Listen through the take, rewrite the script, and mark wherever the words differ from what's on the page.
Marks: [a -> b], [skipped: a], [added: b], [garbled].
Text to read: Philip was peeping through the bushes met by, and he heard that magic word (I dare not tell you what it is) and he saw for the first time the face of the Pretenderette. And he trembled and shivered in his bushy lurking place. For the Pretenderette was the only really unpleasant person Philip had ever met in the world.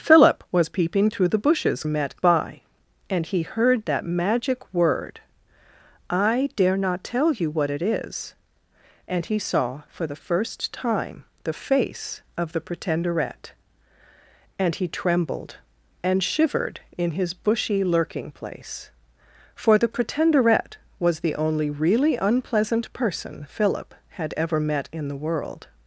Philip was peeping through the bushes met by, and he heard that magic word (I dare not tell you what it is) and he saw for the first time the face of the Pretenderette. And he trembled and shivered in his bushy lurking place. For the Pretenderette was the only really unpleasant person Philip had ever met in the world.